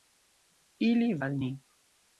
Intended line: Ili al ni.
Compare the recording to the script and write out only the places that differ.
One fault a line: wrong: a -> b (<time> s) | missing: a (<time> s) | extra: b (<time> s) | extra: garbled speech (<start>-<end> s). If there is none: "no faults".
no faults